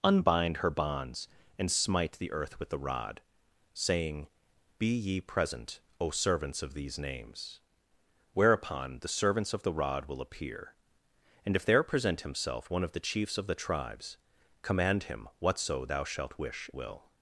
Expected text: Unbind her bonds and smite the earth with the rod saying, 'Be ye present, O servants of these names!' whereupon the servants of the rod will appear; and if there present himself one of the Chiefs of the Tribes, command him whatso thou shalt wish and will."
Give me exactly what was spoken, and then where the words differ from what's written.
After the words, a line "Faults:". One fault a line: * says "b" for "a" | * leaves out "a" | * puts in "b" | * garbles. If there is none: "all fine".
Unbind her bonds and smite the earth with the rod saying, 'Be ye present, O servants of these names!' whereupon the servants of the rod will appear; and if there present himself one of the Chiefs of the Tribes, command him whatso thou shalt wish will."
Faults:
* leaves out "and"